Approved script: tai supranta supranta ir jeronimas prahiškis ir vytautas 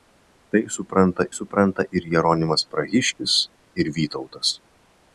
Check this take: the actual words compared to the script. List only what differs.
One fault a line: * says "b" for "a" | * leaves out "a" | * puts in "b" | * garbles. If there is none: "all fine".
all fine